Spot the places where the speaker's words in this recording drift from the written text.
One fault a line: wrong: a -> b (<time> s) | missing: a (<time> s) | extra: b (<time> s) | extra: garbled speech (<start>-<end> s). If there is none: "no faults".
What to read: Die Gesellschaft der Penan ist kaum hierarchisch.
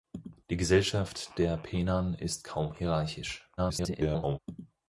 extra: garbled speech (3.6-4.4 s)